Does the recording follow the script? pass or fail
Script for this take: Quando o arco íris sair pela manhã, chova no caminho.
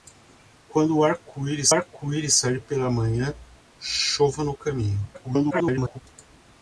fail